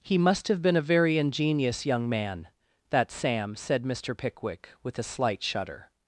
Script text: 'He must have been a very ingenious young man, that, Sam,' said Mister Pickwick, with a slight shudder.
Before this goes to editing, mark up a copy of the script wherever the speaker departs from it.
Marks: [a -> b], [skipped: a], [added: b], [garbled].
'He must have been a very ingenious young man, that, Sam,' said Mister Pickwick, with a slight shudder.